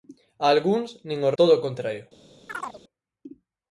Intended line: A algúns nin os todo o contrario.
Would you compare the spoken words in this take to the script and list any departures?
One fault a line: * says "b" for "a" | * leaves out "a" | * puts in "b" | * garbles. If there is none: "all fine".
all fine